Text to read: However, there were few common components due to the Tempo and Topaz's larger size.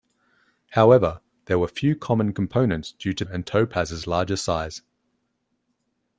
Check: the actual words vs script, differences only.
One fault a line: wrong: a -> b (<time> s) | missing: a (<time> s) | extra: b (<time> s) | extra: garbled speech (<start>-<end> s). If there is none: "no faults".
missing: the Tempo (3.2 s)